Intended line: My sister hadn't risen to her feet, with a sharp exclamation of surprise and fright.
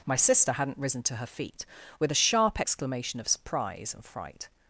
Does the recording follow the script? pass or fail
pass